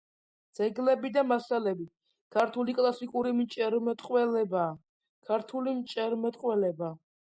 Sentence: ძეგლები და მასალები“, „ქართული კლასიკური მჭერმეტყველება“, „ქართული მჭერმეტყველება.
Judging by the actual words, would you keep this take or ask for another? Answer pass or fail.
pass